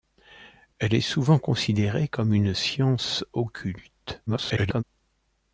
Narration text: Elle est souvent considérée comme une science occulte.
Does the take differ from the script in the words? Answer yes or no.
yes